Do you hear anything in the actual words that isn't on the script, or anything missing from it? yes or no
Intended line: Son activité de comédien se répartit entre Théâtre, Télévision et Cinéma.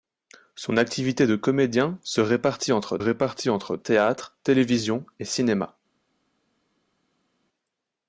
yes